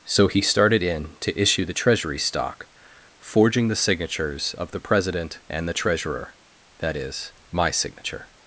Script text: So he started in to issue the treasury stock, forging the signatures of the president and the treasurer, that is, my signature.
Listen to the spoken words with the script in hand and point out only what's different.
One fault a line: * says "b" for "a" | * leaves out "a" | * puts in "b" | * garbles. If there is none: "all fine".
all fine